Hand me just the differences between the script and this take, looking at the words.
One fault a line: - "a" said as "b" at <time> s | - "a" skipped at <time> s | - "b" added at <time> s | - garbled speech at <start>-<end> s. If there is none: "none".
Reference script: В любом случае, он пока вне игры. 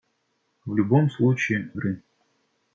- "он пока вне" skipped at 1.7 s